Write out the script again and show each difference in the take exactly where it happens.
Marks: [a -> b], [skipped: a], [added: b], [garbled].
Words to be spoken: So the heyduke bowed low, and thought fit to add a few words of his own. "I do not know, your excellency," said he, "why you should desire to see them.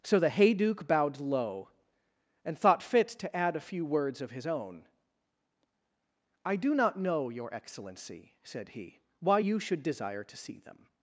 So the heyduke bowed low, and thought fit to add a few words of his own. "I do not know, your excellency," said he, "why you should desire to see them.